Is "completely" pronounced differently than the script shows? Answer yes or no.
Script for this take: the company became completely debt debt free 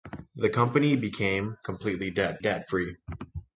no